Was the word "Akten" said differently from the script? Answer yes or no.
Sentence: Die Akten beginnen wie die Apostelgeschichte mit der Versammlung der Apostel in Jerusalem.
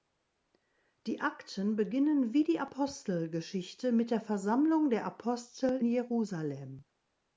no